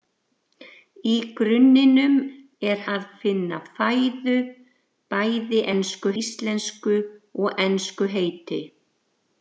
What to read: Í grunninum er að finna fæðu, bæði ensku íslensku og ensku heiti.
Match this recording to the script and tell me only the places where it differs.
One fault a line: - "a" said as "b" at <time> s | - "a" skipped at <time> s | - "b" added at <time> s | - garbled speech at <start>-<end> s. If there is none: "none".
none